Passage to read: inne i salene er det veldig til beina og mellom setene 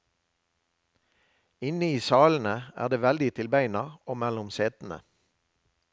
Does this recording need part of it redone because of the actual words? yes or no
no